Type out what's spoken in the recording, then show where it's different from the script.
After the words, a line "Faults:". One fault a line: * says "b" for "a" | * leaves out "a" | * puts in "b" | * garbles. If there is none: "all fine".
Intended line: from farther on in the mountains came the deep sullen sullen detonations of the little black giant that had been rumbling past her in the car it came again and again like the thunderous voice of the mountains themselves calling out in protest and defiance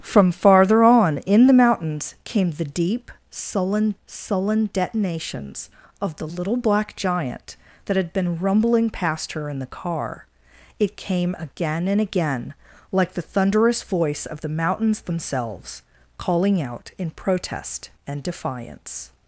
from farther on in the mountains came the deep sullen sullen detonations of the little black giant that had been rumbling past her in the car it came again and again like the thunderous voice of the mountains themselves calling out in protest and defiance
Faults:
all fine